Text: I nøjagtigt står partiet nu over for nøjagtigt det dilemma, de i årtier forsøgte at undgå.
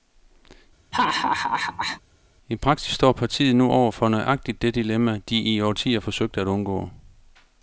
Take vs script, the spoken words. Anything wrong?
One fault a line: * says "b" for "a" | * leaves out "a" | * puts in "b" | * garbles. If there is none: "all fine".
* says "praksis" for "nøjagtigt"